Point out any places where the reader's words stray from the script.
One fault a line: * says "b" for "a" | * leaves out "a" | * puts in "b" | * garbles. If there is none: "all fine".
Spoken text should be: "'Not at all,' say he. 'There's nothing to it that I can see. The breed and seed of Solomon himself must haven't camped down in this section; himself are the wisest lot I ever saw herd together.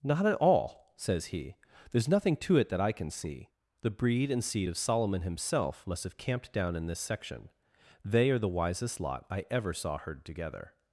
* says "says" for "say"
* says "have" for "haven't"
* says "they" for "himself"